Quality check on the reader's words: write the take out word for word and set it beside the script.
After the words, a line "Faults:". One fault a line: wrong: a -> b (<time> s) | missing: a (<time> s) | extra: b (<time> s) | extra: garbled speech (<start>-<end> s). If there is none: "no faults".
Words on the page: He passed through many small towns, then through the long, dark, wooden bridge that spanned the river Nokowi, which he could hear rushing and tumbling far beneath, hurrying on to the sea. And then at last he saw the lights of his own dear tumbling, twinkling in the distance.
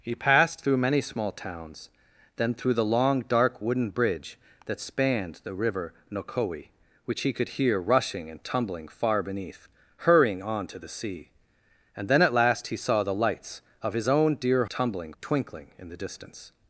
He passed through many small towns, then through the long, dark, wooden bridge that spanned the river Nokowi, which he could hear rushing and tumbling far beneath, hurrying on to the sea. And then at last he saw the lights of his own dear tumbling, twinkling in the distance.
Faults:
no faults